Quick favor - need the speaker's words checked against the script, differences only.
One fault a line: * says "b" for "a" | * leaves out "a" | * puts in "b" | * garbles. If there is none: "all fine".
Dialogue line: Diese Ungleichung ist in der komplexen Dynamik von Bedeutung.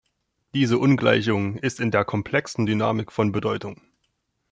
all fine